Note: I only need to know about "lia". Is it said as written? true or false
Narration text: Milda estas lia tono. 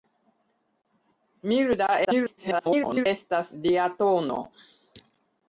true